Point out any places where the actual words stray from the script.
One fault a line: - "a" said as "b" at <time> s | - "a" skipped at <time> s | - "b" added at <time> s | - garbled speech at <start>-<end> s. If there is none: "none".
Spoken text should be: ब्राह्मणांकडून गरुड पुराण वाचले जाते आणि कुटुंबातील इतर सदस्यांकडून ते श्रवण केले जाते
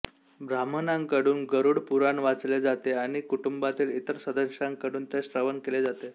none